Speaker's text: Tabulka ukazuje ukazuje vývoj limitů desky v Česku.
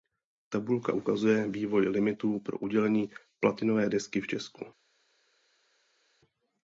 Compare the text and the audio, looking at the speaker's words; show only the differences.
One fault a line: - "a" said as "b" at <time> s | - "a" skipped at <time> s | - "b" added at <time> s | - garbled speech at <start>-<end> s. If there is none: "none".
- "ukazuje" skipped at 1.5 s
- "pro udělení platinové" added at 2.4 s